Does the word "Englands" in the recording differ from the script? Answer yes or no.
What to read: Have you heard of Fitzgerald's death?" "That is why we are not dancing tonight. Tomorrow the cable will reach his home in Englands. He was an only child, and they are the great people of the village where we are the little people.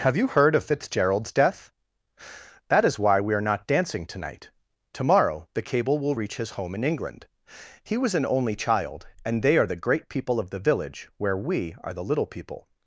yes